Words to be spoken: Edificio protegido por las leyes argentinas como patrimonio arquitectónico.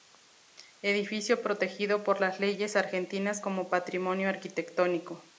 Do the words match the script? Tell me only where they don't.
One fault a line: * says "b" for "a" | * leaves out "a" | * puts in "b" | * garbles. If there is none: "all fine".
all fine